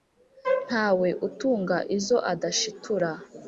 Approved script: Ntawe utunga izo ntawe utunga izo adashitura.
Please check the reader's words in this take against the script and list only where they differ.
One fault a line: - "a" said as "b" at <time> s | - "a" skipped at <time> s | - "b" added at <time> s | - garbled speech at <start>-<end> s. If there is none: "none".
- "ntawe utunga izo" skipped at 2.2 s